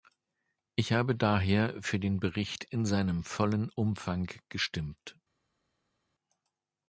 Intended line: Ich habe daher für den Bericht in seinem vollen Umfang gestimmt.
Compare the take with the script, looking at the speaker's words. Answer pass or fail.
pass